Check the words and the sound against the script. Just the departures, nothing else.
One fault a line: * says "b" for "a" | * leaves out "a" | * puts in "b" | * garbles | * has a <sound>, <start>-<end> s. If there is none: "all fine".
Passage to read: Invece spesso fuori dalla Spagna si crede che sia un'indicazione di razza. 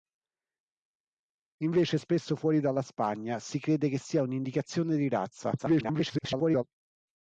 * garbles